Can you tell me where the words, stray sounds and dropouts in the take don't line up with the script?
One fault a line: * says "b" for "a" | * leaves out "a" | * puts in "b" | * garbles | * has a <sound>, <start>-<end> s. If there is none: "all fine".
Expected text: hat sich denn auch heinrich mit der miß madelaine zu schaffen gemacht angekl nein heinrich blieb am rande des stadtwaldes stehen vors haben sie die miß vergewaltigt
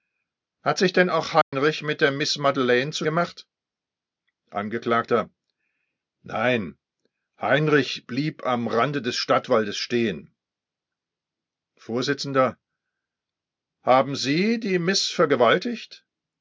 * has a dropout, 1.4-1.5 s
* leaves out "schaffen"